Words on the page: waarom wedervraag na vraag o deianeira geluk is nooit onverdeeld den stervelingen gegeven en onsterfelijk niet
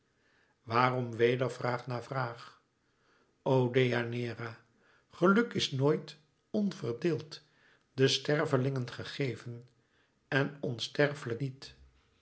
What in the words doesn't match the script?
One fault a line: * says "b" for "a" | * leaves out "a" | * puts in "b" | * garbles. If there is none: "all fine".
all fine